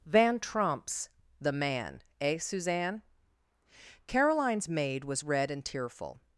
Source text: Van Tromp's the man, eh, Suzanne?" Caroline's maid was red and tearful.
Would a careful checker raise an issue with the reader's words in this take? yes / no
no